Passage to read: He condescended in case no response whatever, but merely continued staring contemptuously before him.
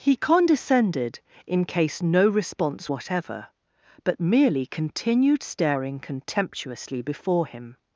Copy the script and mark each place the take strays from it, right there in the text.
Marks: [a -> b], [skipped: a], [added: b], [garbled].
He condescended in case no response whatever, but merely continued staring contemptuously before him.